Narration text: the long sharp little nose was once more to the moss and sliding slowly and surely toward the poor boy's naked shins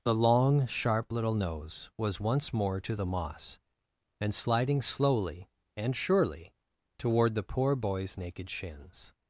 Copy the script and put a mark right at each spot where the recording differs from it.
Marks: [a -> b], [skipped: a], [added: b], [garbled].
the long sharp little nose was once more to the moss and sliding slowly and surely toward the poor boy's naked shins